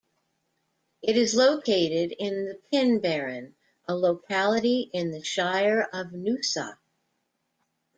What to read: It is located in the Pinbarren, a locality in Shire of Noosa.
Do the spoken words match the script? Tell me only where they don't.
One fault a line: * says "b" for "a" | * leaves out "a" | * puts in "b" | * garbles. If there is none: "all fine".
* puts in "the"